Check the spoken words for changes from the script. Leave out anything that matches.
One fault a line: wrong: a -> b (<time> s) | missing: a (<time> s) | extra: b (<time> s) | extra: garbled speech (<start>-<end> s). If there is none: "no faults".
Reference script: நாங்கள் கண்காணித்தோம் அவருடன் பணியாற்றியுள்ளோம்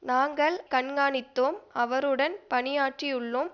no faults